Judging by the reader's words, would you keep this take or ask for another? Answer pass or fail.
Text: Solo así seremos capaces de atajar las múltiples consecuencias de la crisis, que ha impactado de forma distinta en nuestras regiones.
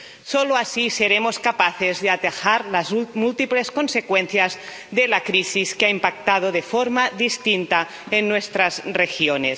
pass